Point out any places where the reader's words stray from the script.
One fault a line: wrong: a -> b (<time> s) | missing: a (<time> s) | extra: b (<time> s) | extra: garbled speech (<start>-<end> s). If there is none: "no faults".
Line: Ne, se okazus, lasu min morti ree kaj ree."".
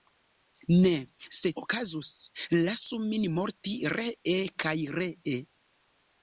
no faults